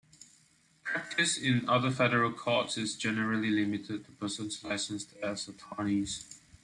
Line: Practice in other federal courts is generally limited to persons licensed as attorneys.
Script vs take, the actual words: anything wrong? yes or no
no